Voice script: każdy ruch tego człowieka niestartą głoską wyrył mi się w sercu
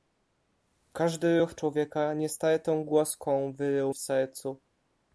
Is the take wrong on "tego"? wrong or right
wrong